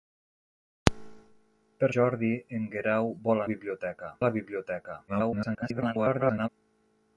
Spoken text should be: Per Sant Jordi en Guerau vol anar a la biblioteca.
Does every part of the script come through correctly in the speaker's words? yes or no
no